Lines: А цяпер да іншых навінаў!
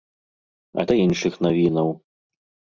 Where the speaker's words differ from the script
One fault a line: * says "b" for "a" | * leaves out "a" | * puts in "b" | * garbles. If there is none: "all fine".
* leaves out "цяпер"